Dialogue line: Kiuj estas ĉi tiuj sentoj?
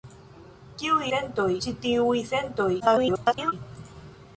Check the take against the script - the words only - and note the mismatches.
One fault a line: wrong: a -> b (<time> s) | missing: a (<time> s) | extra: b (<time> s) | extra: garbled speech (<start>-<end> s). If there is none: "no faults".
wrong: estas -> sentoj (1.1 s)
extra: garbled speech (2.8-3.5 s)